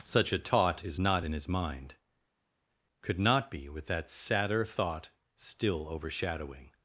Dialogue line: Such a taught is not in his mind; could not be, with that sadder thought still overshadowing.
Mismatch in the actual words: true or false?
false